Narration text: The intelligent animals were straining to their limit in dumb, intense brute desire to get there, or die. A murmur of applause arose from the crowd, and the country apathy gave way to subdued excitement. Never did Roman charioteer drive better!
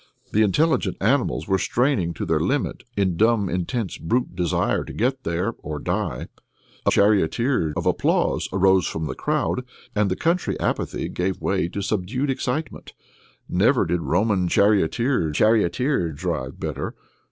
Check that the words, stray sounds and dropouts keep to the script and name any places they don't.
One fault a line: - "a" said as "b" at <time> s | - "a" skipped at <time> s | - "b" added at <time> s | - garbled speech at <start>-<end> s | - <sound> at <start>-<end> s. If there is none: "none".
- "murmur" said as "charioteer" at 6.9 s
- "charioteer" added at 15.3 s